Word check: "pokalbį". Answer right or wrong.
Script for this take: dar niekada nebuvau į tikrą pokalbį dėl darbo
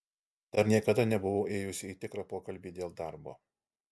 right